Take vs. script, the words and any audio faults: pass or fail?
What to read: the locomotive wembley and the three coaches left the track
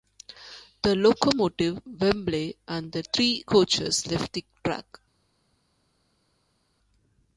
pass